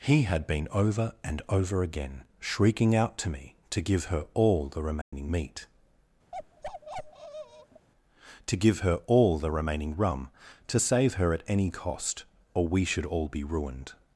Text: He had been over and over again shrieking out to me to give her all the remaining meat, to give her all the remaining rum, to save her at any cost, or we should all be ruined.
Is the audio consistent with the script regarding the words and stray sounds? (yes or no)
no